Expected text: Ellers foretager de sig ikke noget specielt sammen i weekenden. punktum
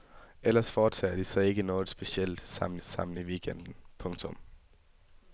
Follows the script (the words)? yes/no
no